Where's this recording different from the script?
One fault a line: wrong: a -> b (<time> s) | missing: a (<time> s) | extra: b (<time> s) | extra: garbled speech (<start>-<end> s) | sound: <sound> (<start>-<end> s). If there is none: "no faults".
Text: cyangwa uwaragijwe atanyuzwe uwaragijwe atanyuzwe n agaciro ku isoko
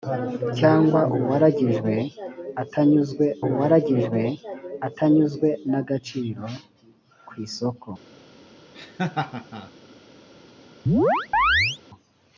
sound: laugh (8.7-9.7 s)
sound: chirp (10.9-11.8 s)